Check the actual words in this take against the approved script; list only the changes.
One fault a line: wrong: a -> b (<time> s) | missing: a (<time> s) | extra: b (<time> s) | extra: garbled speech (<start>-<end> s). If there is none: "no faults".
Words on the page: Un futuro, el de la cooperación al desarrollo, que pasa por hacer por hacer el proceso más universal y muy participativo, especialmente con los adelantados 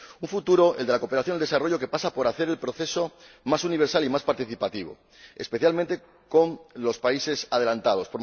missing: por hacer (2.5 s)
wrong: muy -> más (4.1 s)
extra: países (7.0 s)